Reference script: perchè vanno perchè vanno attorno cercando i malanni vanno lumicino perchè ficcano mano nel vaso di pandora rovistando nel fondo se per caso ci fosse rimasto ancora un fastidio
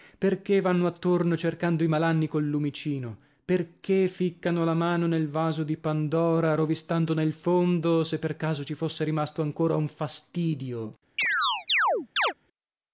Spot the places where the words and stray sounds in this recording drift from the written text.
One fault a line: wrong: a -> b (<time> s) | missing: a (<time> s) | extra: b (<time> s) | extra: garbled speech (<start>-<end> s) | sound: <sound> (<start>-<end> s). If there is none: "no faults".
missing: perchè vanno (0.9 s)
wrong: vanno -> col (2.3 s)
extra: la (4.6 s)
sound: chirp (11.2-12.3 s)